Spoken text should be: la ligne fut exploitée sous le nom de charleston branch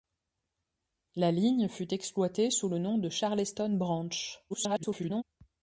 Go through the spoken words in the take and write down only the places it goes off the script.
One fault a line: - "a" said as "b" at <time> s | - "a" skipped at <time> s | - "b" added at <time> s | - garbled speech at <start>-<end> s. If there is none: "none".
- garbled speech at 4.5-5.2 s